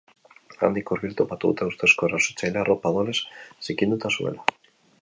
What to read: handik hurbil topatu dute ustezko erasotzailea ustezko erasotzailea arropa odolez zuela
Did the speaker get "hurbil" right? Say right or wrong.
right